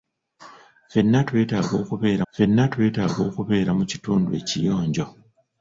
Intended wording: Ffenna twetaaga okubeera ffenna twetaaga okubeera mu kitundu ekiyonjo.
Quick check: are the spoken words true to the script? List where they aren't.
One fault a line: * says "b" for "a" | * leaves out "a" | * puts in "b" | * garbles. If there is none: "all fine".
all fine